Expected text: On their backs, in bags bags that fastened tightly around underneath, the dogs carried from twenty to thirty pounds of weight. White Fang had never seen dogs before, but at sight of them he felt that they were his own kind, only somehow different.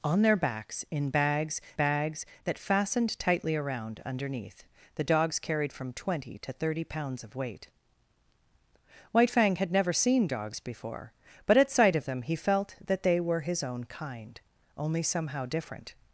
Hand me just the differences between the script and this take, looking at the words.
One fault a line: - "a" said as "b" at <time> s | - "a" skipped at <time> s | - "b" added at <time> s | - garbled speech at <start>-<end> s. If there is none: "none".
none